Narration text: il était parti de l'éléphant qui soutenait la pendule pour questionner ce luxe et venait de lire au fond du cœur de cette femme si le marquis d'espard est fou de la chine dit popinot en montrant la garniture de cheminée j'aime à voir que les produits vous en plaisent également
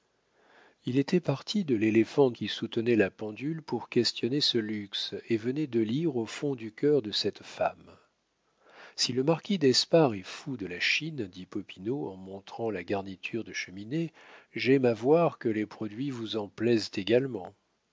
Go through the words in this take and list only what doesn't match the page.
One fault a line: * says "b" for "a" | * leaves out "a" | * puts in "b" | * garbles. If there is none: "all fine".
all fine